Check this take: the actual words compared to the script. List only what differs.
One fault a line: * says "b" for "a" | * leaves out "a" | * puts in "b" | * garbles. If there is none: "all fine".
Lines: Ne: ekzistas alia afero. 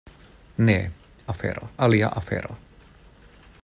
* says "afero" for "ekzistas"